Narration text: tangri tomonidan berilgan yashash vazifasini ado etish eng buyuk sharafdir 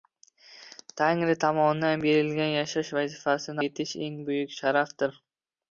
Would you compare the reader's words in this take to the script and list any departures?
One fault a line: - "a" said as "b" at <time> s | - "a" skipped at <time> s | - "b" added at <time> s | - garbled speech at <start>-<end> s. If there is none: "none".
- "ado" skipped at 3.6 s